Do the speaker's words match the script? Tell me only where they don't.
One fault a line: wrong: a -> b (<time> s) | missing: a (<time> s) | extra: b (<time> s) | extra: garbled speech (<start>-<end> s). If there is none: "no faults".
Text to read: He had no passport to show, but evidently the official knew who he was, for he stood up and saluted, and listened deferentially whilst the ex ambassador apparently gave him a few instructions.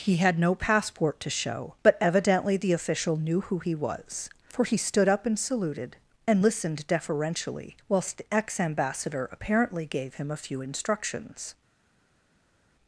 no faults